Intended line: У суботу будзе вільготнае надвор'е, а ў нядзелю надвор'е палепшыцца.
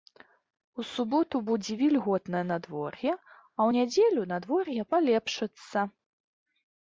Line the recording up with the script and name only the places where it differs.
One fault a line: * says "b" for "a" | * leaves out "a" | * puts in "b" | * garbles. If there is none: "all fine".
all fine